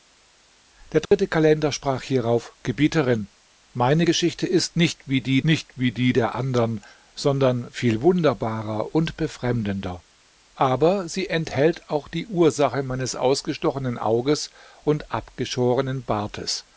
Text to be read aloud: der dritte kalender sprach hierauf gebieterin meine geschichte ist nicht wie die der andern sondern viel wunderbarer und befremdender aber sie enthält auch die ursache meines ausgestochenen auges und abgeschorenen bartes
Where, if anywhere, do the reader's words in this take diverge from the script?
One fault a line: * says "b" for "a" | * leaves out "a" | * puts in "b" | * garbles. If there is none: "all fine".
* puts in "nicht wie die"